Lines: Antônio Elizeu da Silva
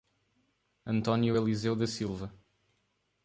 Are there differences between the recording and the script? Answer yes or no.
no